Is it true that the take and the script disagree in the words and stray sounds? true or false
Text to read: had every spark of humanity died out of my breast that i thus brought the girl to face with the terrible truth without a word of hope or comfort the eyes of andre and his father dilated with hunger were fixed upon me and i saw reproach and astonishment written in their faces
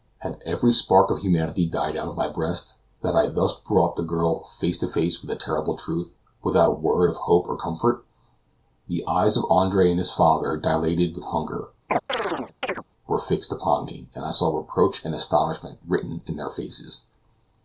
true